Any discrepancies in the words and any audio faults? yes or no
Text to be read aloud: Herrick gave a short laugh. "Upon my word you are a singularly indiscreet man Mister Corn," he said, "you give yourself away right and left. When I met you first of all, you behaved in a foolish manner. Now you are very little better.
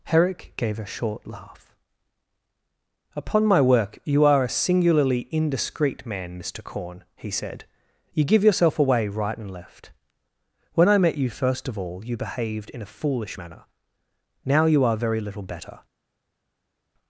yes